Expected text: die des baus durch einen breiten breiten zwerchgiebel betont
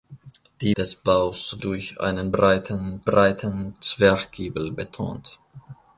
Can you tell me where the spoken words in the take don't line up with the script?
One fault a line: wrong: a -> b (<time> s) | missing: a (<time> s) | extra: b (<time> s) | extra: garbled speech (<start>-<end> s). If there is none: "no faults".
no faults